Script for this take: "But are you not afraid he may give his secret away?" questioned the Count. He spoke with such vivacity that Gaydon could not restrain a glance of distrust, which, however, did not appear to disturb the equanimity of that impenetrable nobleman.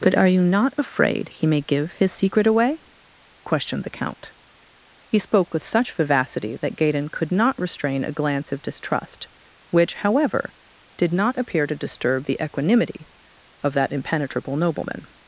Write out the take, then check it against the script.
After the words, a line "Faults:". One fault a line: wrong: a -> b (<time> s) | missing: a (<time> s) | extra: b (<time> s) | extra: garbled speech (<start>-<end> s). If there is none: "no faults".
"But are you not afraid he may give his secret away?" questioned the Count. He spoke with such vivacity that Gaydon could not restrain a glance of distrust, which, however, did not appear to disturb the equanimity of that impenetrable nobleman.
Faults:
no faults